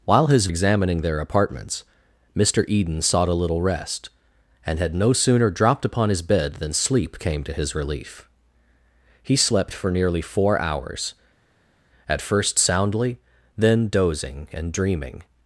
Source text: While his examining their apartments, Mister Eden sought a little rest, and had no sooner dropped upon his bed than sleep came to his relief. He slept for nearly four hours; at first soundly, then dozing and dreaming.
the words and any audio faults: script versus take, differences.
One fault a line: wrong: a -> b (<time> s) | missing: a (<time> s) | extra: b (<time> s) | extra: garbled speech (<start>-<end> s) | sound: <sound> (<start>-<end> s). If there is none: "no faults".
no faults